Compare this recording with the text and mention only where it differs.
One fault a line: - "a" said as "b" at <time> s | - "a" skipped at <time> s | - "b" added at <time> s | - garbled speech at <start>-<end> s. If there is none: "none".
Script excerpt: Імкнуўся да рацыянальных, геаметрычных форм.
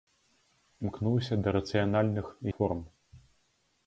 - "геаметрычных" skipped at 2.2 s